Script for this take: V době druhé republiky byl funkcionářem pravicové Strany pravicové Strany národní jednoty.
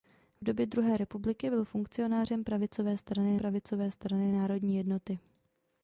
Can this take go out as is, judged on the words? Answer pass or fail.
pass